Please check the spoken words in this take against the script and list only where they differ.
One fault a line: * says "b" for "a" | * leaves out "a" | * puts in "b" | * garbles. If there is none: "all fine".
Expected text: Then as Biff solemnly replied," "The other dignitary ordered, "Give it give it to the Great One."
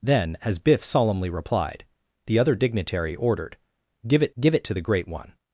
all fine